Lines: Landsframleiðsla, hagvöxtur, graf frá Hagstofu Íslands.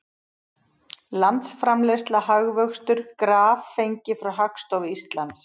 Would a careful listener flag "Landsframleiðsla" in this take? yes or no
no